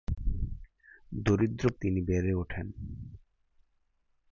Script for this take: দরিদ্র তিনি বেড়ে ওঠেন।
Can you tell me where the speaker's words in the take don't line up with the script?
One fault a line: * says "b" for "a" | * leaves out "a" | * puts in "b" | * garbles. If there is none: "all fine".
all fine